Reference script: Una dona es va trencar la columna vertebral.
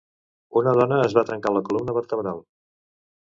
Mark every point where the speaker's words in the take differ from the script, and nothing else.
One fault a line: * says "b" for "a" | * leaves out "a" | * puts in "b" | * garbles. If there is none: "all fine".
all fine